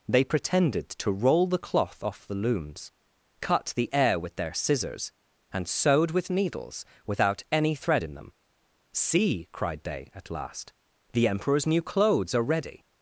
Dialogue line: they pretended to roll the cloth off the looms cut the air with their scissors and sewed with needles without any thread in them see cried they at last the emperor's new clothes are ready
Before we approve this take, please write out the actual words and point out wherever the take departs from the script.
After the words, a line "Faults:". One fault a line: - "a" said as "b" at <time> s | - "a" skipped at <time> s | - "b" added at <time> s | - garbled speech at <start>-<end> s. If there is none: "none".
they pretended to roll the cloth off the looms cut the air with their scissors and sewed with needles without any thread in them see cried they at last the emperor's new clothes are ready
Faults:
none